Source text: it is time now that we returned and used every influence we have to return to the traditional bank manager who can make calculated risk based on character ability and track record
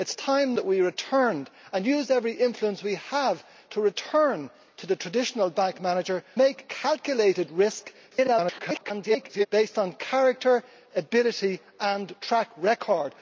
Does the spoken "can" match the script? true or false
false